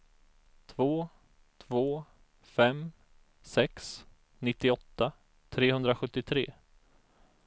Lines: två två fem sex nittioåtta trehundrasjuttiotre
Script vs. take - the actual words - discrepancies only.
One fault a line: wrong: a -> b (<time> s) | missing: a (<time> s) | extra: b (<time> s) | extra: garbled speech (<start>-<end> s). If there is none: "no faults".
no faults